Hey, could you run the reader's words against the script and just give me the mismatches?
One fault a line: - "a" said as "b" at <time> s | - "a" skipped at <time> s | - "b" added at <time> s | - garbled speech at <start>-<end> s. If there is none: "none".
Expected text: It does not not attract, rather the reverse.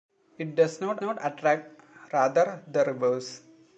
none